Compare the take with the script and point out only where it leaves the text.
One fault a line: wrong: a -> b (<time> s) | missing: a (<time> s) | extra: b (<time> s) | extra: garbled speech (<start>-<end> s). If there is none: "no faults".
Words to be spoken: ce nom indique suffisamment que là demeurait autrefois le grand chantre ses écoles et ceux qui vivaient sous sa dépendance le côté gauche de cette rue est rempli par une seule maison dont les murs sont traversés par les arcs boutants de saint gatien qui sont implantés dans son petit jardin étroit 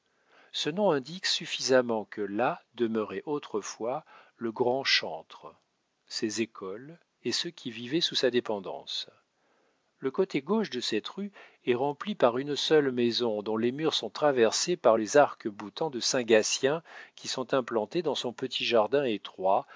no faults